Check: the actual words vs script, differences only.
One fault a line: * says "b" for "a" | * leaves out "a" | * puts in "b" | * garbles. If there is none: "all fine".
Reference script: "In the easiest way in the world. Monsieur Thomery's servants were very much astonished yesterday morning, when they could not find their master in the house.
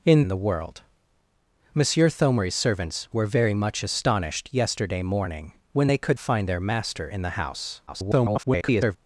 * leaves out "the easiest way"
* leaves out "not"
* garbles